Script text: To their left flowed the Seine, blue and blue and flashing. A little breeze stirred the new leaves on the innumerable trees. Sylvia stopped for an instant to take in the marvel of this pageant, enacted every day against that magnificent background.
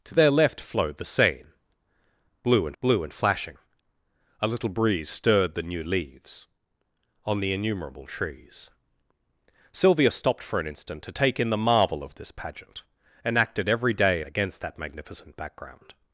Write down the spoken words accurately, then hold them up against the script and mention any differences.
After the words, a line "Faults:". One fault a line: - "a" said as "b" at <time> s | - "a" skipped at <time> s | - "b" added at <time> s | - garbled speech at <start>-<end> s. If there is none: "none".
To their left flowed the Seine, blue and blue and flashing. A little breeze stirred the new leaves on the innumerable trees. Sylvia stopped for an instant to take in the marvel of this pageant, enacted every day against that magnificent background.
Faults:
none